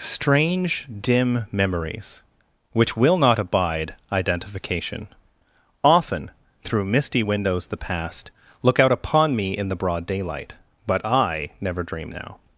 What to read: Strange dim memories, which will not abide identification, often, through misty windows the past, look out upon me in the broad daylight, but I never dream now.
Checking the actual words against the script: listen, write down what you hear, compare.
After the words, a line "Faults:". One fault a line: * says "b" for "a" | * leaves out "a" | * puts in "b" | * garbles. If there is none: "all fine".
Strange dim memories, which will not abide identification, often, through misty windows the past, look out upon me in the broad daylight, but I never dream now.
Faults:
all fine